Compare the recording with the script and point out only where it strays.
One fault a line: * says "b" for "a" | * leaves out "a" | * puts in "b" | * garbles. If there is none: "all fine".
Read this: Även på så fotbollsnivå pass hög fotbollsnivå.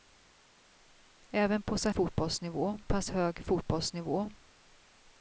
all fine